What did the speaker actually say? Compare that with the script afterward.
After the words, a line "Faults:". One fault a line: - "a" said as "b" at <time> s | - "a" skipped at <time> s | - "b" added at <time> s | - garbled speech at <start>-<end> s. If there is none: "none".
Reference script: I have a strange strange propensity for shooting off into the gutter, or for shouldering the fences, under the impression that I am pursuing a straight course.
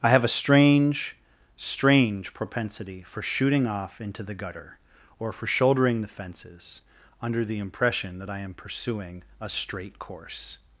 I have a strange strange propensity for shooting off into the gutter, or for shouldering the fences, under the impression that I am pursuing a straight course.
Faults:
none